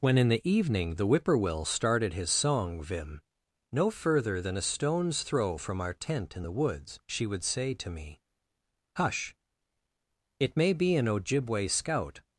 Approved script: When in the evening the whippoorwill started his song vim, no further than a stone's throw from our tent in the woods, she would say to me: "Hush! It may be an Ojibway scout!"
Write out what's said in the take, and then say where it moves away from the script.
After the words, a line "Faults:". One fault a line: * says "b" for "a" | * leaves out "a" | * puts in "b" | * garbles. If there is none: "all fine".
When in the evening the whippoorwill started his song vim, no further than a stone's throw from our tent in the woods, she would say to me: "Hush! It may be an Ojibway scout!"
Faults:
all fine